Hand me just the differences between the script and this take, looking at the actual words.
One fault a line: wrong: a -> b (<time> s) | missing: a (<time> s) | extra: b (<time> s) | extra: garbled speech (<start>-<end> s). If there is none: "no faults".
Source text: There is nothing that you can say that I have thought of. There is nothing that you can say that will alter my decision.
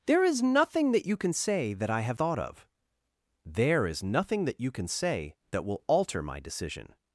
no faults